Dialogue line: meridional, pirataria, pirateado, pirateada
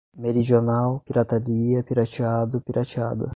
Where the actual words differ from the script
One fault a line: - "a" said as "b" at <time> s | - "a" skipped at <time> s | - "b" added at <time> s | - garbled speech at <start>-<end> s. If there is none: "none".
none